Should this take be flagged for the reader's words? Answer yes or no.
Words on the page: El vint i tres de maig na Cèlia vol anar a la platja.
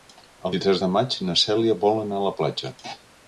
yes